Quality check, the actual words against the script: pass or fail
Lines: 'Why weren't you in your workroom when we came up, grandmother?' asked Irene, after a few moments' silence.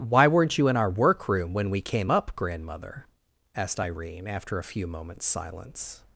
fail